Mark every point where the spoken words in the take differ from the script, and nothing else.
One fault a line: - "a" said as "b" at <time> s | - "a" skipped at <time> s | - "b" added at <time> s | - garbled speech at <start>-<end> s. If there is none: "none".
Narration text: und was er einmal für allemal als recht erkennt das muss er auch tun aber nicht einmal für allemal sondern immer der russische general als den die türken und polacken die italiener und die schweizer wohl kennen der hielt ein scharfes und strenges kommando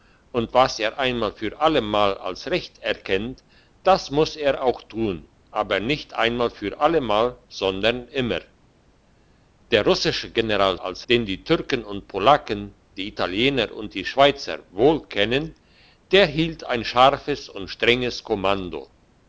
none